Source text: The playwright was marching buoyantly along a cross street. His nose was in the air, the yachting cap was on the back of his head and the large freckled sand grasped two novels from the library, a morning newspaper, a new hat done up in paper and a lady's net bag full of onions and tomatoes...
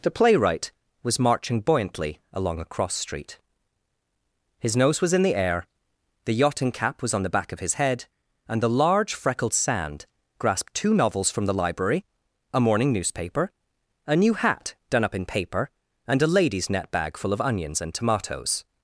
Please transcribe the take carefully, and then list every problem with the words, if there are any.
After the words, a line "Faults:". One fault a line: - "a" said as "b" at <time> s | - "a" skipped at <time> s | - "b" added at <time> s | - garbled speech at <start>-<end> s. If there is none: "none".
The playwright was marching buoyantly along a cross street. His nose was in the air, the yachting cap was on the back of his head and the large freckled sand grasped two novels from the library, a morning newspaper, a new hat done up in paper and a lady's net bag full of onions and tomatoes...
Faults:
none